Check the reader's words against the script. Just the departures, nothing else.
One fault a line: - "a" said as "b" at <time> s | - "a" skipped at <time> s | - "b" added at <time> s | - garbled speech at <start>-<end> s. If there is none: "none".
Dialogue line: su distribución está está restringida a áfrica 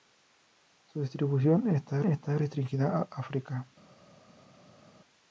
none